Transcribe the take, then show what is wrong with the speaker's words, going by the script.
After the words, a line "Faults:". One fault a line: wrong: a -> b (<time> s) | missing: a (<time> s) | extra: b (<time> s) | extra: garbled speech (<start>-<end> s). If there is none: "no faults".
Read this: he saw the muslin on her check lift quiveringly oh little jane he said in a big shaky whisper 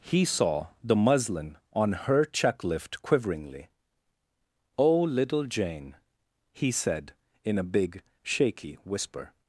he saw the muslin on her check lift quiveringly oh little jane he said in a big shaky whisper
Faults:
no faults